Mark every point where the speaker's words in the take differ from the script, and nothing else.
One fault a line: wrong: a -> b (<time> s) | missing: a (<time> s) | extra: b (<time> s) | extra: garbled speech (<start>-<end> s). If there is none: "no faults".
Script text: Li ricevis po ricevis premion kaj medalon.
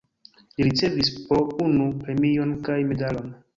wrong: ricevis -> unu (1.7 s)